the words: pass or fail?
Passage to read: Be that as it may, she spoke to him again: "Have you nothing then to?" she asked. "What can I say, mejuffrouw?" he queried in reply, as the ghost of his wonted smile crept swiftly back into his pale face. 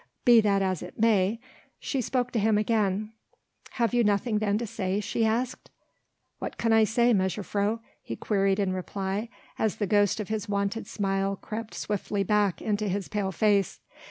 fail